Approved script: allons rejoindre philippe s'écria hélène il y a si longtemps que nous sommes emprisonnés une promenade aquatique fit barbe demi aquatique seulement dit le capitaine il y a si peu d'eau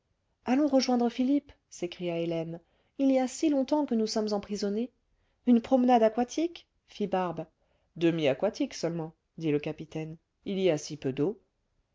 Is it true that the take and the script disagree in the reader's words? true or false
false